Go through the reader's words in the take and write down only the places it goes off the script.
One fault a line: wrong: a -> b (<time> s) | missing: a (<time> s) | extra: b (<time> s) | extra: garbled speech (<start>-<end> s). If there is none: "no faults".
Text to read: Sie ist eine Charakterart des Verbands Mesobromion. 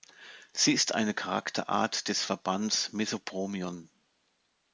no faults